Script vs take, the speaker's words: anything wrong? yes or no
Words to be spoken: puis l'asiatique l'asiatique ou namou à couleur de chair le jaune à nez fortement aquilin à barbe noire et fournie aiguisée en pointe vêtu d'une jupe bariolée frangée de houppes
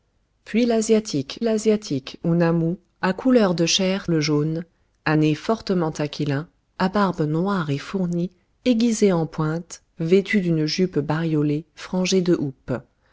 no